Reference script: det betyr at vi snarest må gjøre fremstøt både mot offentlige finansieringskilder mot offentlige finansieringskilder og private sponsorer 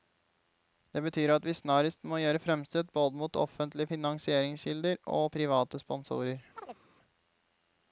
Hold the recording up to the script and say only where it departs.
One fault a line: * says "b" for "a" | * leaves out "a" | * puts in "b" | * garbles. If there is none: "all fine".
* leaves out "mot offentlige finansieringskilder"